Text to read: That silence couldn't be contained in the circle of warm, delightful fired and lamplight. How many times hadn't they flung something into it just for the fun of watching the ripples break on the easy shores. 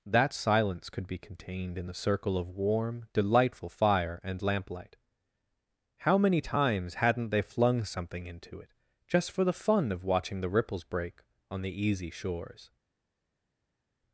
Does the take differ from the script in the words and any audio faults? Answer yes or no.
yes